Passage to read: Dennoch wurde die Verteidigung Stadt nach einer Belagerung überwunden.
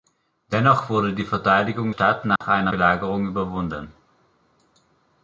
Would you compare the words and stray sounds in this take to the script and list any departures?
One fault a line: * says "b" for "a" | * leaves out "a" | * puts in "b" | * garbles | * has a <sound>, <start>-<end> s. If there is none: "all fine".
* has a dropout, 2.4-2.4 s